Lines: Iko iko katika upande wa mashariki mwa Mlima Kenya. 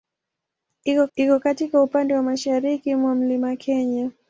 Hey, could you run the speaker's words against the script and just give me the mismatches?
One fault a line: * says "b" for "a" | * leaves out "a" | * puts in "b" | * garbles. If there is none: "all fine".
all fine